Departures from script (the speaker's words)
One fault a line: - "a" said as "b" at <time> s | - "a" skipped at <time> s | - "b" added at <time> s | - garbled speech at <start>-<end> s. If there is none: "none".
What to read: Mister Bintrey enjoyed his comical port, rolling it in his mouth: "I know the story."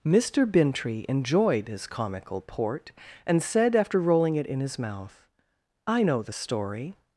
- "and said after" added at 3.3 s